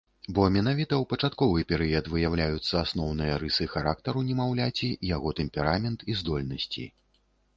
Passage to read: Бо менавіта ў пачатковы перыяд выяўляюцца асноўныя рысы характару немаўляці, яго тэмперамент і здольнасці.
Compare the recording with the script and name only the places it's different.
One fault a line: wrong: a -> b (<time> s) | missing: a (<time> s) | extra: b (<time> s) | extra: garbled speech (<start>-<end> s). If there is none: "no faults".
no faults